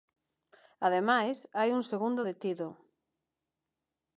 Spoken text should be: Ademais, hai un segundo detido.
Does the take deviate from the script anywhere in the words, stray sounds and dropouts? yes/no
no